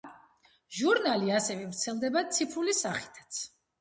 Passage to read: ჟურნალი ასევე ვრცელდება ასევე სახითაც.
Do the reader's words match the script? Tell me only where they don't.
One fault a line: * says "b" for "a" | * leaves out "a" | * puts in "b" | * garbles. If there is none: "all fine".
* says "ციფრული" for "ასევე"